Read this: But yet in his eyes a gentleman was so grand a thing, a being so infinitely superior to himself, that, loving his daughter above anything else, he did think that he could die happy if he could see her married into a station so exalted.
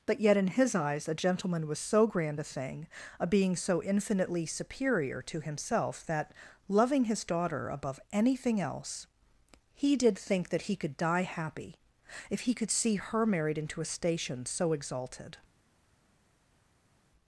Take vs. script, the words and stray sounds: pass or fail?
pass